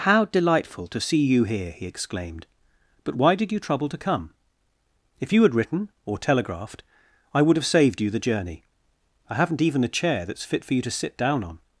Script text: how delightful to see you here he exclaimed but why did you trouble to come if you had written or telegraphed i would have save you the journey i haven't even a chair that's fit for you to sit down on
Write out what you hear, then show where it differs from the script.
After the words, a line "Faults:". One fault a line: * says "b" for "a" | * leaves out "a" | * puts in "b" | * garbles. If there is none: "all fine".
how delightful to see you here he exclaimed but why did you trouble to come if you had written or telegraphed i would have saved you the journey i haven't even a chair that's fit for you to sit down on
Faults:
* says "saved" for "save"